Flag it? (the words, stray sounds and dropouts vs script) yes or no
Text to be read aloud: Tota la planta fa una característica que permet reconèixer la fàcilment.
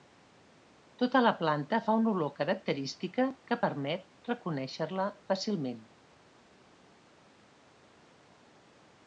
yes